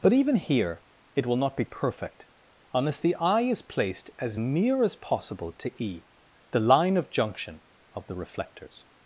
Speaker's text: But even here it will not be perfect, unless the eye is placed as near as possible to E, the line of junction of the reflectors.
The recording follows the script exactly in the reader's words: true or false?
true